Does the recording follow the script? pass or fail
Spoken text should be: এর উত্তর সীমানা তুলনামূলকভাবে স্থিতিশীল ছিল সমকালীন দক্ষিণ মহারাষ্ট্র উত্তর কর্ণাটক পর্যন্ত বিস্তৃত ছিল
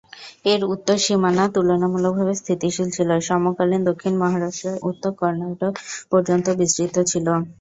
pass